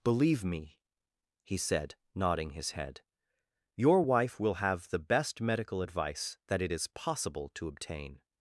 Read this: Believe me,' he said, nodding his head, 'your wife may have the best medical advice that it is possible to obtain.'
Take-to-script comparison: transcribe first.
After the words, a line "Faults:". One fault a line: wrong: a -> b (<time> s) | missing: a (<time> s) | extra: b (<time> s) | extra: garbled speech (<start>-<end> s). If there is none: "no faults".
Believe me,' he said, nodding his head, 'your wife will have the best medical advice that it is possible to obtain.'
Faults:
wrong: may -> will (4.4 s)